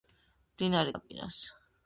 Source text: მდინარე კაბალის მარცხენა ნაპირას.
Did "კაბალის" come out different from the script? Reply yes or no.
yes